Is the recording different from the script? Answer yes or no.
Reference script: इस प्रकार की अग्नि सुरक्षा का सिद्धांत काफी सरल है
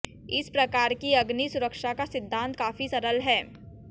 no